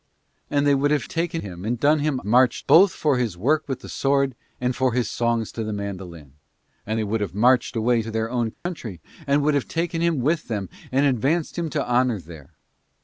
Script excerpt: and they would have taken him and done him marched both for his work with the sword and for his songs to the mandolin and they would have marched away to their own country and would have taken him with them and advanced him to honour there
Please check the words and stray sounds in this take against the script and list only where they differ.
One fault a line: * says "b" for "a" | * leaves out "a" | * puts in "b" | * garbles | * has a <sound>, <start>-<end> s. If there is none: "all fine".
* has a dropout, 8.5-8.7 s